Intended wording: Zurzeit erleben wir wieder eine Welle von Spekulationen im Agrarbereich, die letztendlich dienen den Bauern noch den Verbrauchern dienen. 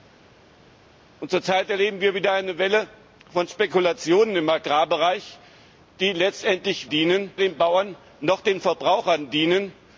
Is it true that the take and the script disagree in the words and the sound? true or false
false